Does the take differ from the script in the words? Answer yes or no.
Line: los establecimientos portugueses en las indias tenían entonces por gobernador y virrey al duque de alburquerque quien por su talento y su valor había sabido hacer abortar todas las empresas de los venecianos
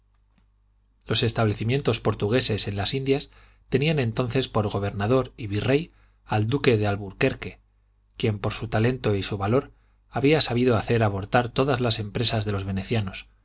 no